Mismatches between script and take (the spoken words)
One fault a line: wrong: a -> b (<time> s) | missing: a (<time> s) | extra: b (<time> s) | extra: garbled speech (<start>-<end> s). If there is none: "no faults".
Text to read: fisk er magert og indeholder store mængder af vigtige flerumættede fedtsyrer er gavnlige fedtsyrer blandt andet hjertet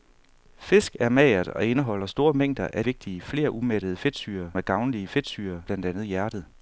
no faults